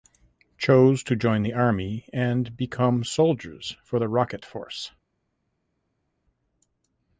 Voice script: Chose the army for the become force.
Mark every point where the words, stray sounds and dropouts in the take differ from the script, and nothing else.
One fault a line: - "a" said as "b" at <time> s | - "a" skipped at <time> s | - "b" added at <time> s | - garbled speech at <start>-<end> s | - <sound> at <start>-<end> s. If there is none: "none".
- "to join" added at 1.0 s
- "and become soldiers" added at 2.1 s
- "become" said as "rocket" at 4.1 s